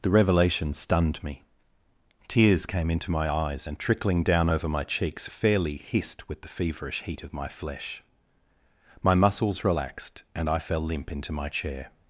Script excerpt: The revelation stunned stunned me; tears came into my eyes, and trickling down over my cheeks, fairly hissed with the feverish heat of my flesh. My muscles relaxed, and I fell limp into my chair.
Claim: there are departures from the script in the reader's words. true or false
true